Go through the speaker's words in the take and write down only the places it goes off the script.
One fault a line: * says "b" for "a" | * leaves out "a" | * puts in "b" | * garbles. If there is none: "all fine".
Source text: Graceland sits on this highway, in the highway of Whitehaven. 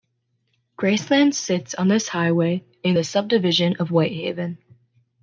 * says "subdivision" for "highway"